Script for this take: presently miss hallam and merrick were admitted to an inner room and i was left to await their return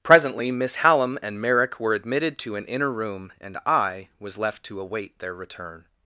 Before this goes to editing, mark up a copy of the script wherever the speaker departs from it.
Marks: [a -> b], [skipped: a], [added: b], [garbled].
presently miss hallam and merrick were admitted to an inner room and i was left to await their return